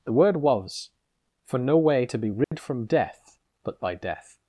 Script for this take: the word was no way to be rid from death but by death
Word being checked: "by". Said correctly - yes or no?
yes